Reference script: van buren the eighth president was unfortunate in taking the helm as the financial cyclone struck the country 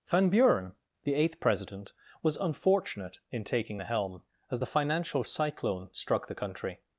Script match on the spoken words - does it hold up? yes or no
yes